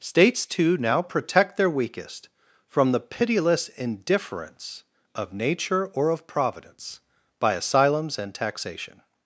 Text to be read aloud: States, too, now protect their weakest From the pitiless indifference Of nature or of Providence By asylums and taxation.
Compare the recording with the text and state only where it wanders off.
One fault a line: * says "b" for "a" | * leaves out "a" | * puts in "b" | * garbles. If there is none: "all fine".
all fine